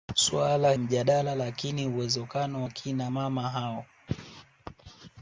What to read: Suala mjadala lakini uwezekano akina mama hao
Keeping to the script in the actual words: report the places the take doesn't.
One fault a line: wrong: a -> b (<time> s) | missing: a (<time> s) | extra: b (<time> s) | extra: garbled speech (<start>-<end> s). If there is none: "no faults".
no faults